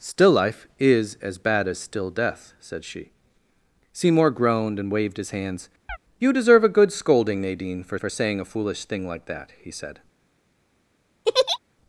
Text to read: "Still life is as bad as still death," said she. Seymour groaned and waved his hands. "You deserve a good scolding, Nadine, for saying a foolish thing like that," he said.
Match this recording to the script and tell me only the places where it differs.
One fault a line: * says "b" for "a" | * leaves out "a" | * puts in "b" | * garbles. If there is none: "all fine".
* puts in "for"